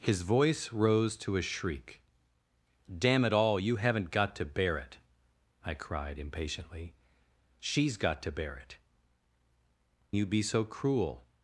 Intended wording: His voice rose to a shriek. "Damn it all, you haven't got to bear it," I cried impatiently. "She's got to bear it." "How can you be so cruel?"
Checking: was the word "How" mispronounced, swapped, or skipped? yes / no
yes